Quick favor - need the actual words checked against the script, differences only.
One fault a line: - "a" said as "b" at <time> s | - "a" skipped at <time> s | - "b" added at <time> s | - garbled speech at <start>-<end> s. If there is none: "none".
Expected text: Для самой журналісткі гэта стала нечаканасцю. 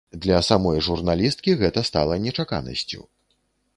none